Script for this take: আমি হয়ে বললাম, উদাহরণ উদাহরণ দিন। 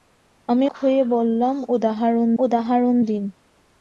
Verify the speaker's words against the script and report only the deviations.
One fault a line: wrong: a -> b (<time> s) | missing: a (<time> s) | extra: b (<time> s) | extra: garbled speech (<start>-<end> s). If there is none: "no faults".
no faults